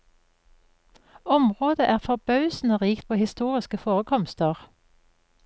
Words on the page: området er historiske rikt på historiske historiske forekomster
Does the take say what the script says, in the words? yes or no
no